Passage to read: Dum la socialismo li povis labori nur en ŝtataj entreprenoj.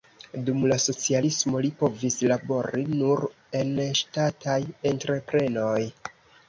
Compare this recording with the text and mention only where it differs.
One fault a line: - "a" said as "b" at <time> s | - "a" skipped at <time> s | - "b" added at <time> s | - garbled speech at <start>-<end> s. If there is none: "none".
none